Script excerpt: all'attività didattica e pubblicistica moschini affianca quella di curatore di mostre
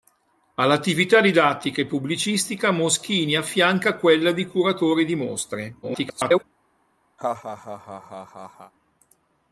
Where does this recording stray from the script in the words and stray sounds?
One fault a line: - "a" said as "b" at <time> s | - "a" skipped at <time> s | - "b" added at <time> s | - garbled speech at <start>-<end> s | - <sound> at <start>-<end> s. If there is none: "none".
- garbled speech at 5.8-6.4 s
- laugh at 7.2-8.7 s